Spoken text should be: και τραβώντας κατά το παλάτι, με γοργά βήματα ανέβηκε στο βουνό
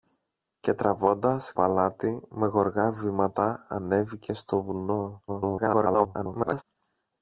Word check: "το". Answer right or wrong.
wrong